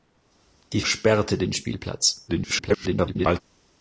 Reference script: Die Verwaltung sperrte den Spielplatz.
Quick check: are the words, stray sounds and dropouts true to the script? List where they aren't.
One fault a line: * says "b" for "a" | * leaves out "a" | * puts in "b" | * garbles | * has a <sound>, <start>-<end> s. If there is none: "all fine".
* leaves out "Verwaltung"
* garbles